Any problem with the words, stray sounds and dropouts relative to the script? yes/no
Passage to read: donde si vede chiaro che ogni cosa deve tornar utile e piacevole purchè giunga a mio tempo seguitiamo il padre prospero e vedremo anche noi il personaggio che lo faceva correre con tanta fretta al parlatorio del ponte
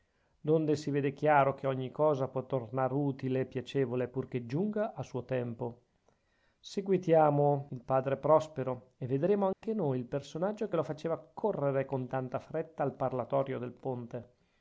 yes